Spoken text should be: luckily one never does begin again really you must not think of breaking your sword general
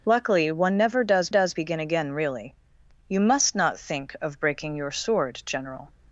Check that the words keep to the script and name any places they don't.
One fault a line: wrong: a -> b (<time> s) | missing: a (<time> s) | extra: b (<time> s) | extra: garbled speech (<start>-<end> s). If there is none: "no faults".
extra: does (1.3 s)